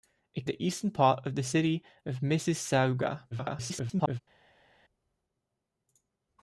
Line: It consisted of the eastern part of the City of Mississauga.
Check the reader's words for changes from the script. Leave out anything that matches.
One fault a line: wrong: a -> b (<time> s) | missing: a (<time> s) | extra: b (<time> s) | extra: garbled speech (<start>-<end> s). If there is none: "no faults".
missing: consisted of (0.5 s)
extra: garbled speech (3.3-4.2 s)